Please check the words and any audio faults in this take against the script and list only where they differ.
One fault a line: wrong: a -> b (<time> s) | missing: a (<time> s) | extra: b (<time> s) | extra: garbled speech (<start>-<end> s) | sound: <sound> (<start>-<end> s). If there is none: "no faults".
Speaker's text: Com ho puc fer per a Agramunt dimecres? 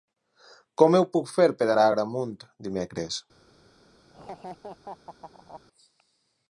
sound: laugh (4.1-5.6 s)